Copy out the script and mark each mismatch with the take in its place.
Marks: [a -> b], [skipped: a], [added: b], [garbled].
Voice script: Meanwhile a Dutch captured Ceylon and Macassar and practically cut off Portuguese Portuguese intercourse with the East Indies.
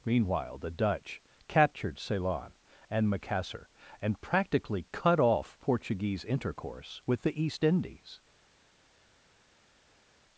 Meanwhile [a -> the] Dutch captured Ceylon and Macassar and practically cut off Portuguese [skipped: Portuguese] intercourse with the East Indies.